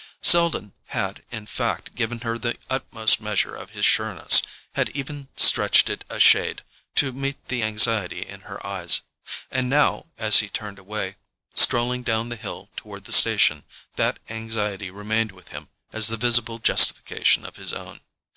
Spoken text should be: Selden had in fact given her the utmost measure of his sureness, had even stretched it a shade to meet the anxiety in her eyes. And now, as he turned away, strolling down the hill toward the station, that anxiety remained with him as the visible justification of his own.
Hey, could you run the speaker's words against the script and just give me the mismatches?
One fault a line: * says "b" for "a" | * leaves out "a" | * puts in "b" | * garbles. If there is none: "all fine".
all fine